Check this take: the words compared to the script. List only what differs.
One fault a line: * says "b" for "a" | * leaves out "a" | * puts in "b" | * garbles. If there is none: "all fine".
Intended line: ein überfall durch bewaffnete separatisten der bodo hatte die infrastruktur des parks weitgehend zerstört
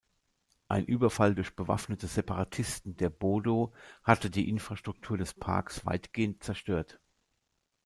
all fine